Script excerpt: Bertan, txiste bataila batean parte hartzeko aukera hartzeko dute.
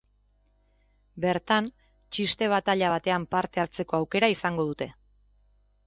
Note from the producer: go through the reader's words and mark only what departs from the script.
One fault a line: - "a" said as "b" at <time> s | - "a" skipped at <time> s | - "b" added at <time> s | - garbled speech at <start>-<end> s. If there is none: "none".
- "hartzeko" said as "izango" at 4.4 s